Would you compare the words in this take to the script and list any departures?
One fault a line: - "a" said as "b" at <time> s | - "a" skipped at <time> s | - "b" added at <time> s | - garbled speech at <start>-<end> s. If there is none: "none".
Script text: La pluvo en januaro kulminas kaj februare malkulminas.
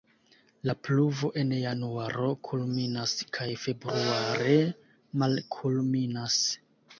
none